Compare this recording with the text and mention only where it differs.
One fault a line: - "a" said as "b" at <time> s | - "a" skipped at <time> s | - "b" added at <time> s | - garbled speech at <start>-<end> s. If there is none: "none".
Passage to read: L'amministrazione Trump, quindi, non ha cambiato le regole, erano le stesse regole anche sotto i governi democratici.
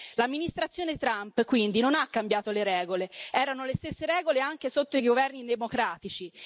none